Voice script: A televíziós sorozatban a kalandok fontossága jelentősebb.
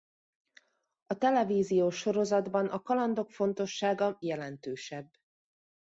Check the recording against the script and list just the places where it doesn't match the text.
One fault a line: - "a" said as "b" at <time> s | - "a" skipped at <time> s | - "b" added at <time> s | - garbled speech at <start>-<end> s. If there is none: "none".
none